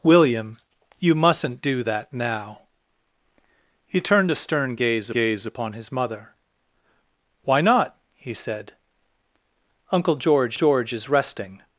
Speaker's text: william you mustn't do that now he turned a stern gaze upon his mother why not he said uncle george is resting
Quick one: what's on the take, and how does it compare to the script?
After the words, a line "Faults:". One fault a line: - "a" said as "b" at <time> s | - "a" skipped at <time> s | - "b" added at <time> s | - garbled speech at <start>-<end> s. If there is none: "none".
william you mustn't do that now he turned a stern gaze gaze upon his mother why not he said uncle george george is resting
Faults:
- "gaze" added at 5.1 s
- "george" added at 10.5 s